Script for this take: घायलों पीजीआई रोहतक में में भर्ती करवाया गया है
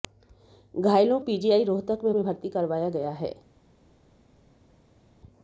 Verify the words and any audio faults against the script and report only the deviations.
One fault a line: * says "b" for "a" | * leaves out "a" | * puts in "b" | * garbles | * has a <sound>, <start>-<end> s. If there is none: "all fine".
all fine